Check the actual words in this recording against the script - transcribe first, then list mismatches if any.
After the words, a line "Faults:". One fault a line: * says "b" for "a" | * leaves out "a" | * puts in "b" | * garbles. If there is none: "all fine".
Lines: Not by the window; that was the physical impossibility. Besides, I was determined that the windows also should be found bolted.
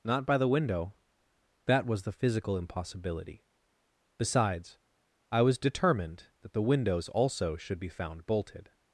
Not by the window; that was the physical impossibility. Besides, I was determined that the windows also should be found bolted.
Faults:
all fine